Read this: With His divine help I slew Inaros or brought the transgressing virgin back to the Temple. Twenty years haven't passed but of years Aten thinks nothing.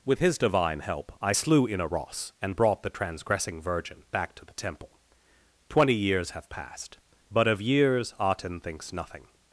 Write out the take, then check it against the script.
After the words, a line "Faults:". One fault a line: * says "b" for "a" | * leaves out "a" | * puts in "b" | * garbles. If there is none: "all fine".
With His divine help I slew Inaros and brought the transgressing virgin back to the Temple. Twenty years have passed but of years Aten thinks nothing.
Faults:
* says "and" for "or"
* says "have" for "haven't"